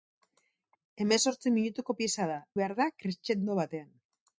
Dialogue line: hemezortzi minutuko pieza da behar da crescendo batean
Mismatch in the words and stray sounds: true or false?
false